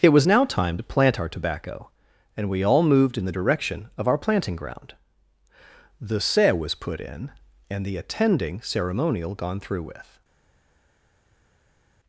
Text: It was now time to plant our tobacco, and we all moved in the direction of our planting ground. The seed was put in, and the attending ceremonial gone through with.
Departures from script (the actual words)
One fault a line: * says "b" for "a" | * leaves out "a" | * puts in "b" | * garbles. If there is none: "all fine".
* says "se" for "seed"